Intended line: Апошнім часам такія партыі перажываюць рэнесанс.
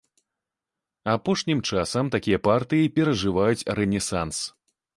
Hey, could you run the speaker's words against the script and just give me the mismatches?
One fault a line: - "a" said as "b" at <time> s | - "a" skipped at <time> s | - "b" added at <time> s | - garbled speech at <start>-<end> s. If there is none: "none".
none